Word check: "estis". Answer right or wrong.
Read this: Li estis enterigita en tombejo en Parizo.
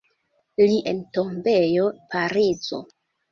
wrong